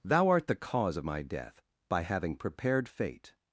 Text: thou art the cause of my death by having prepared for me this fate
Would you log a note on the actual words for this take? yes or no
yes